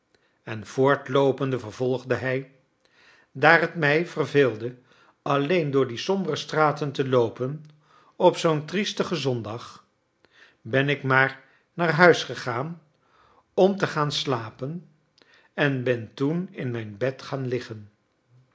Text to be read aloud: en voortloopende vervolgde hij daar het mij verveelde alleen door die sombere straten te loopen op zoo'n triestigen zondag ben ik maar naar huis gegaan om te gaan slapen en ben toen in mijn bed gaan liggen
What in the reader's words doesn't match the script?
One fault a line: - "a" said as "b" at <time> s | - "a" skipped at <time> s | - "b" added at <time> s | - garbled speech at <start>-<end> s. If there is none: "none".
none